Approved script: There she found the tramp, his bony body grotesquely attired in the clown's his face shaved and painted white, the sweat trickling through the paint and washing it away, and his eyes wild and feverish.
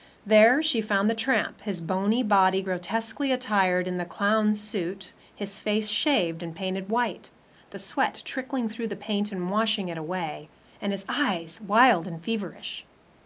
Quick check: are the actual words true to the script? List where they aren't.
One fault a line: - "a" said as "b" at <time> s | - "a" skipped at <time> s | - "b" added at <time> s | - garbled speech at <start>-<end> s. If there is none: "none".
- "suit" added at 4.6 s